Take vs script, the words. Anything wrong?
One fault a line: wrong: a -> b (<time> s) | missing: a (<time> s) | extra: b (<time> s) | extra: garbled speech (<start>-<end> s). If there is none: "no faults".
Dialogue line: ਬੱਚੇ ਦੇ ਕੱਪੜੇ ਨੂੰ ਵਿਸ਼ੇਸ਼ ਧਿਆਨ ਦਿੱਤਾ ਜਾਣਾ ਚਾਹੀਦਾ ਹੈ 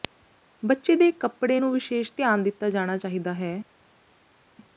no faults